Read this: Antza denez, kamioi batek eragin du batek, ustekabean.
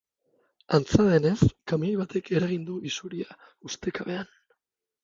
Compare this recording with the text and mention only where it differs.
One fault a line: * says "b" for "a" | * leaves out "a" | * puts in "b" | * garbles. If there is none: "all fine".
* says "isuria" for "batek"